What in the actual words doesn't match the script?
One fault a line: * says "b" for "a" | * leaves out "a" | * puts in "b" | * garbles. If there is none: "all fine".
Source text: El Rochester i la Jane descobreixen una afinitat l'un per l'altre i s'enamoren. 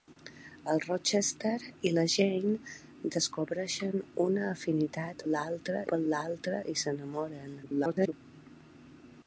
* says "l'altre" for "l'un"
* garbles